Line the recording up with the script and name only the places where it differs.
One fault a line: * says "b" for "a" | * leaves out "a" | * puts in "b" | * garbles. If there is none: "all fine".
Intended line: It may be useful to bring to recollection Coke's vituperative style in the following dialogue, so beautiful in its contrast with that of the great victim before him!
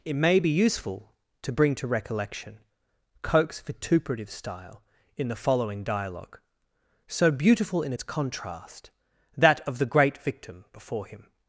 * leaves out "with"